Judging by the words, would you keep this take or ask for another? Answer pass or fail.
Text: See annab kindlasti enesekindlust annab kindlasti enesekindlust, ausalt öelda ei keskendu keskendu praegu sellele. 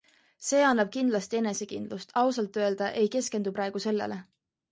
fail